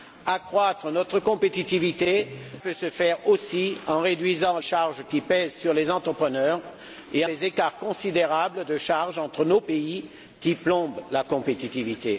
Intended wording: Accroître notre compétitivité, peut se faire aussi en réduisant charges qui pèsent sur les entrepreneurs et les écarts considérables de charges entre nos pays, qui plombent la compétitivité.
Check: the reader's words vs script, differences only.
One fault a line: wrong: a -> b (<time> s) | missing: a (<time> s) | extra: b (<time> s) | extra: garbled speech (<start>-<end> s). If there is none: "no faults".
no faults